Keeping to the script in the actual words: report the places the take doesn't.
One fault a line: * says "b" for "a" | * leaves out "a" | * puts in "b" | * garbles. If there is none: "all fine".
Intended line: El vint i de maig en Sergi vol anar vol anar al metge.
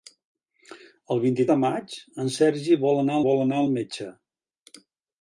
all fine